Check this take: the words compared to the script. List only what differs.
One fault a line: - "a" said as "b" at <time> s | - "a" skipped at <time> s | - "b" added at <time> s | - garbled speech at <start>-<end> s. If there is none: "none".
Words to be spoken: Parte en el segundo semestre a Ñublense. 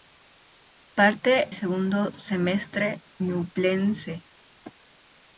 - "en el" skipped at 1.5 s
- "a" skipped at 3.0 s